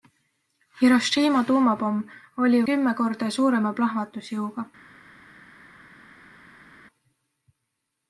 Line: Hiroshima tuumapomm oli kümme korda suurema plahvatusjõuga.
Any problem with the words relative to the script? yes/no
no